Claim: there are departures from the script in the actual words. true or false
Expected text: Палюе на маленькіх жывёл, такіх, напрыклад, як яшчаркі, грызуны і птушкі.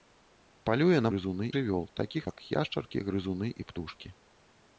true